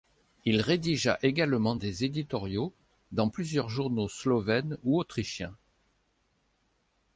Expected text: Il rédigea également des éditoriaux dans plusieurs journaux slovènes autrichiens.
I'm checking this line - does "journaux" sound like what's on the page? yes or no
yes